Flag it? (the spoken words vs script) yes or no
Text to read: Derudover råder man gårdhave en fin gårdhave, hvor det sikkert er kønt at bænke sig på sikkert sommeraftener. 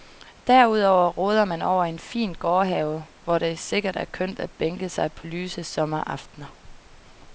yes